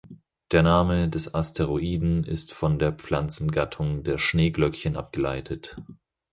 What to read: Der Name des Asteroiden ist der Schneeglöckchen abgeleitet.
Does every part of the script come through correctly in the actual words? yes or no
no